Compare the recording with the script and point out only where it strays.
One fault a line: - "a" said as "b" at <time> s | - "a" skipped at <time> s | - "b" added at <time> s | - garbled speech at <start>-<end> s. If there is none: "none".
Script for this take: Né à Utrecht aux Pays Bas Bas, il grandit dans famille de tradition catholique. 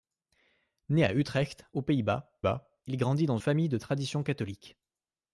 none